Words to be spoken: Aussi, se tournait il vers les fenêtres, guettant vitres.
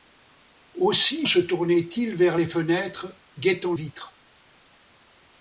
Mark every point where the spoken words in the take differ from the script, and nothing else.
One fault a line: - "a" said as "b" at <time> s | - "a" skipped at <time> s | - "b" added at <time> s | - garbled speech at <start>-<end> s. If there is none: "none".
none